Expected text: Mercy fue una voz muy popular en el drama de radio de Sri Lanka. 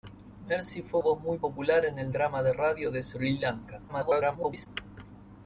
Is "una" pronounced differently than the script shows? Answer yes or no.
yes